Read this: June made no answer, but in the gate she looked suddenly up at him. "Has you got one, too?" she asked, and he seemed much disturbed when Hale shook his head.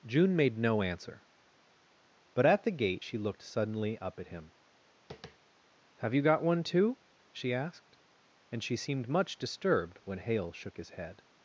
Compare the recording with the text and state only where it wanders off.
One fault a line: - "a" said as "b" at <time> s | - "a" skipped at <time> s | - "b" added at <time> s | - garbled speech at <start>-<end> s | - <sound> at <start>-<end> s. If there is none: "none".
- "in" said as "at" at 2.4 s
- tap at 5.1-5.4 s
- "Has" said as "Have" at 6.0 s
- "he" said as "she" at 8.6 s